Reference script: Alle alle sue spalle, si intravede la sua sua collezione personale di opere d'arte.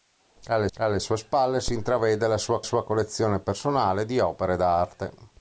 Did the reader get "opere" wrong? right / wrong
right